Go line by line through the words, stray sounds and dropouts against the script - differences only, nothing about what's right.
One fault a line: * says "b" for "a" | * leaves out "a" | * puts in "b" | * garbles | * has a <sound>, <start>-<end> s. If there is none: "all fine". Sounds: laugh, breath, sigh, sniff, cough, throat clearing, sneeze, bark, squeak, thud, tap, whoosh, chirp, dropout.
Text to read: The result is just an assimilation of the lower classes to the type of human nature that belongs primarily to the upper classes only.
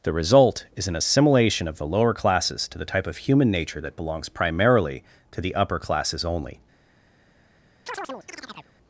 * leaves out "just"
* has a chirp, 7.9-8.7 s